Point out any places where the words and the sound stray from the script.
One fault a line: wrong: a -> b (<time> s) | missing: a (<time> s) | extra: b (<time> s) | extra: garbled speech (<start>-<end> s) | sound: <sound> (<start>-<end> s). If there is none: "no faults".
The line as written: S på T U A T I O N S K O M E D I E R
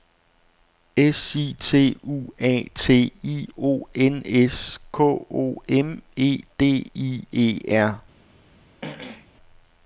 wrong: på -> I (1.4 s)
sound: throat clearing (8.8-9.3 s)